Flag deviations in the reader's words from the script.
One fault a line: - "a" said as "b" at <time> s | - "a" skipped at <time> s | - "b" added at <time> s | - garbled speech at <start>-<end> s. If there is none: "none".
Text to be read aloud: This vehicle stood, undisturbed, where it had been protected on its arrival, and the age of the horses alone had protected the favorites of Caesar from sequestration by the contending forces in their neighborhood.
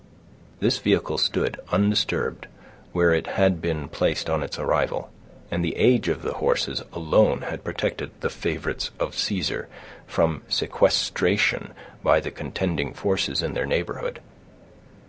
- "protected" said as "placed" at 3.9 s